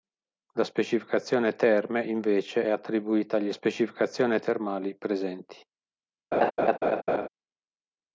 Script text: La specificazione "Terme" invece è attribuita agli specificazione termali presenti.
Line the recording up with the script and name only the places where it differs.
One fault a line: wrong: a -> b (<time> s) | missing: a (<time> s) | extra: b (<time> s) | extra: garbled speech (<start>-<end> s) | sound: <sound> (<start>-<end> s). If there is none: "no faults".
sound: laugh (6.3-7.3 s)